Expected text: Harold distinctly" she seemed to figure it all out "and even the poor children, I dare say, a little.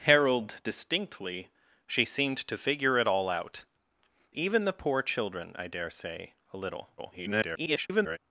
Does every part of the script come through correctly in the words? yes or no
no